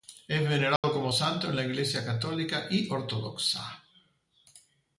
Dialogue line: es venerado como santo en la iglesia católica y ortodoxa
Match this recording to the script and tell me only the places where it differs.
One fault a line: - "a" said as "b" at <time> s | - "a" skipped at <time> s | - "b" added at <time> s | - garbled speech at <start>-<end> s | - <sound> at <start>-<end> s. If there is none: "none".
- dropout at 0.8-0.8 s